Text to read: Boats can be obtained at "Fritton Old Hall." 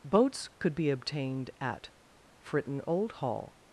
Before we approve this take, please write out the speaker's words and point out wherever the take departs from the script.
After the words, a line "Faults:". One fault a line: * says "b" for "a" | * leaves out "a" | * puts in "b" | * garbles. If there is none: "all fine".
Boats could be obtained at "Fritton Old Hall."
Faults:
* says "could" for "can"